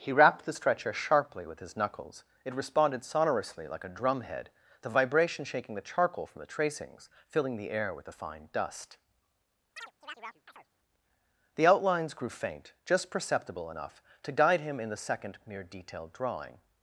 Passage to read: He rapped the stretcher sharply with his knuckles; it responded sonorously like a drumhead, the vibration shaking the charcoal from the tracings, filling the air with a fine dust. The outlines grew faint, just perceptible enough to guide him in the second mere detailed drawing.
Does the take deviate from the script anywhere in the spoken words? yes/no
no